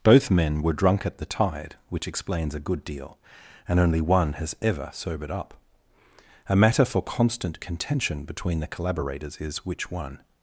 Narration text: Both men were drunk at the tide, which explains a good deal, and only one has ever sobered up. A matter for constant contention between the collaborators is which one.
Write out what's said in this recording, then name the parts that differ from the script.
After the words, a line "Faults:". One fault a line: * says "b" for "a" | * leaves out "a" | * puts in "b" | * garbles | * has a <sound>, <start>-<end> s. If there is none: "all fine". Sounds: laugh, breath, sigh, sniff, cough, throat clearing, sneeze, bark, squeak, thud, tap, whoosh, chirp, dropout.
Both men were drunk at the tide, which explains a good deal, and only one has ever sobered up. A matter for constant contention between the collaborators is which one.
Faults:
all fine